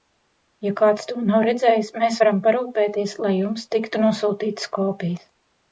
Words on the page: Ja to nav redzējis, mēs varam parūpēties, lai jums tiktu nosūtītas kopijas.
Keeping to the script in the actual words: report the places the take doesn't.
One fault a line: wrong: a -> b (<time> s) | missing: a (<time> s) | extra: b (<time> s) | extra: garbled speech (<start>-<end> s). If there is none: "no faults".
extra: kāds (0.8 s)